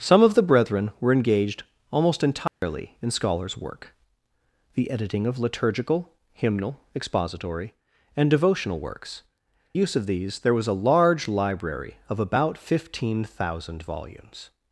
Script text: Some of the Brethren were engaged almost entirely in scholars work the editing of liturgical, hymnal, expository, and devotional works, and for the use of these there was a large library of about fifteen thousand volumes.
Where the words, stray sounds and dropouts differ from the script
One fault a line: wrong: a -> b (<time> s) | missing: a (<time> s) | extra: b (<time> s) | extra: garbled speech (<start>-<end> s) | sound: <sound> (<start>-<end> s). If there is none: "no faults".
sound: dropout (2.5-2.6 s)
missing: and for the (9.2 s)